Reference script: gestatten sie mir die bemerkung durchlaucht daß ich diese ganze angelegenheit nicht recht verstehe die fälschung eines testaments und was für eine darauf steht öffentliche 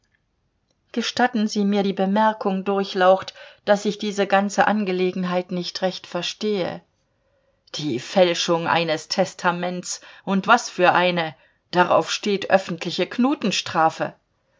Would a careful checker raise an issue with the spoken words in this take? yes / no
no